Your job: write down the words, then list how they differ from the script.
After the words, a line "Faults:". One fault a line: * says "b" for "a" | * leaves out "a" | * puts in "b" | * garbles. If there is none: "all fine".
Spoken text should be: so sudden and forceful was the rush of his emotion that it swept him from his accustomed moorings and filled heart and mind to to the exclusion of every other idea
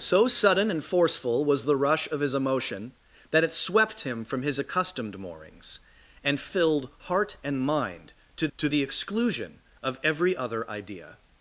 so sudden and forceful was the rush of his emotion that it swept him from his accustomed moorings and filled heart and mind to to the exclusion of every other idea
Faults:
all fine